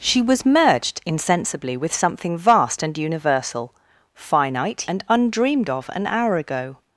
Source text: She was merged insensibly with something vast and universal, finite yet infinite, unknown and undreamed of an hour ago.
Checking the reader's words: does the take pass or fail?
fail